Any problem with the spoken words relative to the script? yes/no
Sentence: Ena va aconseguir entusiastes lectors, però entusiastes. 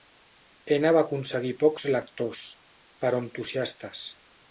yes